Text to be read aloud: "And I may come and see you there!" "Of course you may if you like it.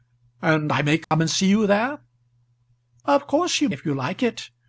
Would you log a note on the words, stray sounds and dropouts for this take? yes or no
yes